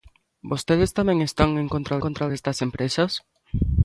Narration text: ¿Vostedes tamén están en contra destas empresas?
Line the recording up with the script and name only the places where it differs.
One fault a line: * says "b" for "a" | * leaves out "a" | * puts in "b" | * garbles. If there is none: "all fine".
* puts in "contra"